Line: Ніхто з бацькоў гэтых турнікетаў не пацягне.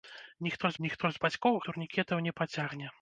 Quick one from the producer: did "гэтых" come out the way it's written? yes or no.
no